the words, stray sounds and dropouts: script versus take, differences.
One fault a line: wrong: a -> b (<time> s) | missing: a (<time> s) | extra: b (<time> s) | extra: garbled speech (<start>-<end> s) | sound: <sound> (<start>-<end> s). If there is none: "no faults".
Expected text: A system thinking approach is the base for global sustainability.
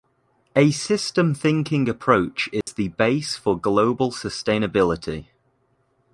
sound: dropout (2.6-2.7 s)